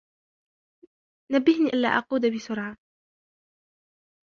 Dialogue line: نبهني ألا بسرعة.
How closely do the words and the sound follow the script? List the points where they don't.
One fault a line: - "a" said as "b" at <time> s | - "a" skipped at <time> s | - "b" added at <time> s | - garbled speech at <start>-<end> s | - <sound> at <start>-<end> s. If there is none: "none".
- "أقود" added at 1.9 s